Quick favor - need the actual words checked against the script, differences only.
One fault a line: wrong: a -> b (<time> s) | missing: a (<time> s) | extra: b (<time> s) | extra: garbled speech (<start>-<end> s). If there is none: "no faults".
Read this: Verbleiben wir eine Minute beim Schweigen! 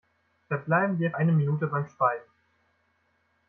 no faults